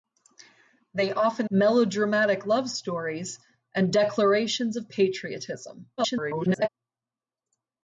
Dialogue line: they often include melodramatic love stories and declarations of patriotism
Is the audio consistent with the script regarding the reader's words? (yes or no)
no